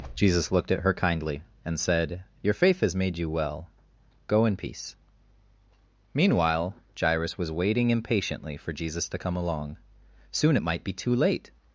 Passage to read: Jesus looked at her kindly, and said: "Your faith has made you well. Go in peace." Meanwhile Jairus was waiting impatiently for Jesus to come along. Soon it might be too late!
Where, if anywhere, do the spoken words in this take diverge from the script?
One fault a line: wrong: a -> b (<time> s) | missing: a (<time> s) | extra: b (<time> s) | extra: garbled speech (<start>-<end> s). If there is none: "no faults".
no faults